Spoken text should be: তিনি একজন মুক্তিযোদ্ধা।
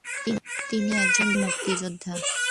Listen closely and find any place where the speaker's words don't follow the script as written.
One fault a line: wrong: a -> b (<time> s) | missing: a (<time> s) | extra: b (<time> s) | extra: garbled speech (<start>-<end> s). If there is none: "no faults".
no faults